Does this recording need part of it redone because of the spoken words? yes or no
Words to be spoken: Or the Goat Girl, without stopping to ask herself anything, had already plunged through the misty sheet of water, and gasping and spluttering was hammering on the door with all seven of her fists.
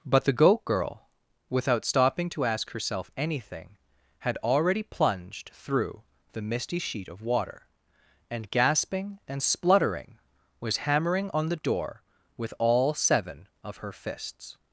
yes